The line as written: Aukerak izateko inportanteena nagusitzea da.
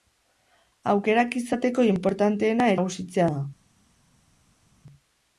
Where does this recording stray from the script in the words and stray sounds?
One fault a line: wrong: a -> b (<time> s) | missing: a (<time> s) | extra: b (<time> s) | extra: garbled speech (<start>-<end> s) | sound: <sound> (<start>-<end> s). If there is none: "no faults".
no faults